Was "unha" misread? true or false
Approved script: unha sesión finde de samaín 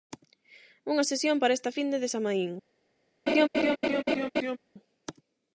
false